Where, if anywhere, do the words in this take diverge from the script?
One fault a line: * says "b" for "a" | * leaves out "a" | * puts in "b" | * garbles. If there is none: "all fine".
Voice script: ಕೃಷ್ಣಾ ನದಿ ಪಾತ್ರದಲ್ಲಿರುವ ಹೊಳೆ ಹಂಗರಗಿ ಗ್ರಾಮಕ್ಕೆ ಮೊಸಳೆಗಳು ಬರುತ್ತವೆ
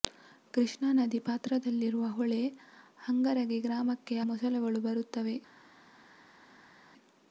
all fine